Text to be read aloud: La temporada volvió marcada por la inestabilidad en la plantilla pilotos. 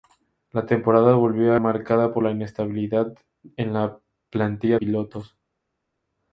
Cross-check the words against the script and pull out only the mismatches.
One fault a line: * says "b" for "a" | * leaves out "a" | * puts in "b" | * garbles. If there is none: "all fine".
all fine